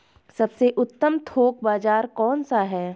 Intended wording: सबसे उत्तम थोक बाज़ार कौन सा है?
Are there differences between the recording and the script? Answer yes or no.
no